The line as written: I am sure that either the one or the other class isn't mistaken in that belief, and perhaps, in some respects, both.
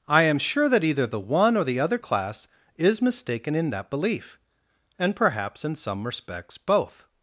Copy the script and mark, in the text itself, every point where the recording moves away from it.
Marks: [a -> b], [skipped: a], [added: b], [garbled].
I am sure that either the one or the other class [isn't -> is] mistaken in that belief, and perhaps, in some respects, both.